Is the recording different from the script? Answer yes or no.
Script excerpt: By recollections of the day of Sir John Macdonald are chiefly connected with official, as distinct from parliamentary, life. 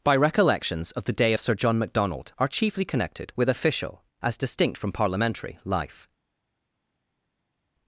no